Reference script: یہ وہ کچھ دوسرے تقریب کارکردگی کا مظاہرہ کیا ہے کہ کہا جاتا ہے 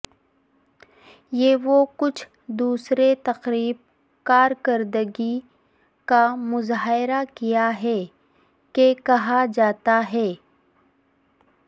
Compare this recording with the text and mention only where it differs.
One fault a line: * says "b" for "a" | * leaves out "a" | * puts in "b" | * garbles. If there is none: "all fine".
all fine